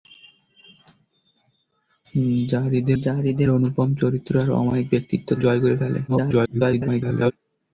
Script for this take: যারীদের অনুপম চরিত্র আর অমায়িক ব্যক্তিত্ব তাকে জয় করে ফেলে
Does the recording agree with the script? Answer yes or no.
no